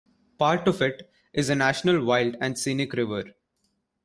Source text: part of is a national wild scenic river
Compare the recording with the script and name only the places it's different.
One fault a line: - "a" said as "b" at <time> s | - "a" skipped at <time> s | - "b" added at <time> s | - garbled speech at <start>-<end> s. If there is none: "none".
- "it" added at 0.8 s
- "and" added at 2.4 s